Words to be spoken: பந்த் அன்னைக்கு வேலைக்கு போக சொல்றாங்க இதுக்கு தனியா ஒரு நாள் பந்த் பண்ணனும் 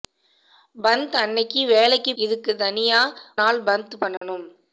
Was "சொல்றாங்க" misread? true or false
true